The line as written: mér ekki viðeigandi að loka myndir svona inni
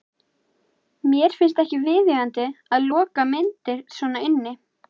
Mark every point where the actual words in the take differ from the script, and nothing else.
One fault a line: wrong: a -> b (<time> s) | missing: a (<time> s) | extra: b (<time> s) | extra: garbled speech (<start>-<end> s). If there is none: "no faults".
extra: finnst (1.4 s)